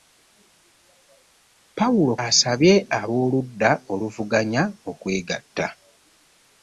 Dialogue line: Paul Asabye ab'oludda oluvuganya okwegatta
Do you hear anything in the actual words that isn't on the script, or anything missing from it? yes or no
no